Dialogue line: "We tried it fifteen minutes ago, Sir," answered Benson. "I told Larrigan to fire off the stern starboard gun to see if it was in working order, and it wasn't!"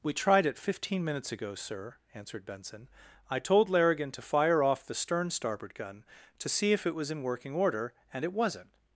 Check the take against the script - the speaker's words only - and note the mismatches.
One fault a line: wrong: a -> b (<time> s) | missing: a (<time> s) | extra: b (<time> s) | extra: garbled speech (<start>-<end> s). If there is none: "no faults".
no faults